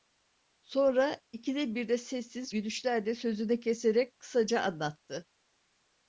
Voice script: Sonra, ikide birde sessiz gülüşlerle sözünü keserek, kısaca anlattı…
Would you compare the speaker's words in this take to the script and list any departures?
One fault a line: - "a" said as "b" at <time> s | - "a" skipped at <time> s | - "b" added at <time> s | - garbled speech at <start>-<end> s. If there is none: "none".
none